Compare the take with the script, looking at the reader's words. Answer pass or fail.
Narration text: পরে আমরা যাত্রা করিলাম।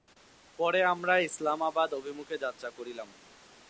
fail